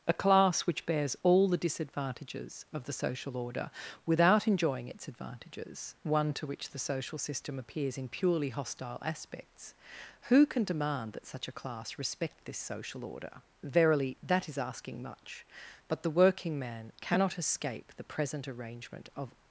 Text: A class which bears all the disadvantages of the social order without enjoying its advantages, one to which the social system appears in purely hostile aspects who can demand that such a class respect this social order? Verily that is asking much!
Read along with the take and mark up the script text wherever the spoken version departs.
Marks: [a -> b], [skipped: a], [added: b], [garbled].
A class which bears all the disadvantages of the social order without enjoying its advantages, one to which the social system appears in purely hostile aspects who can demand that such a class respect this social order? Verily that is asking much! [added: But the working man cannot escape the present arrangement of]